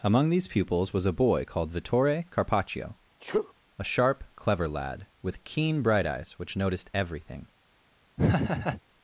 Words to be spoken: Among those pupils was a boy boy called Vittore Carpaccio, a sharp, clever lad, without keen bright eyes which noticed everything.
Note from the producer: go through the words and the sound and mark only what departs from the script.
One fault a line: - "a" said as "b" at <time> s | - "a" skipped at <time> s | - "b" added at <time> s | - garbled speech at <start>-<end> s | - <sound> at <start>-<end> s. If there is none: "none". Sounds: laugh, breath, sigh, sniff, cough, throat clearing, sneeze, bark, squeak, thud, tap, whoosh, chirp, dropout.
- "those" said as "these" at 0.3 s
- "boy" skipped at 1.4 s
- sneeze at 3.2-3.5 s
- "without" said as "with" at 5.2 s
- laugh at 8.2-8.8 s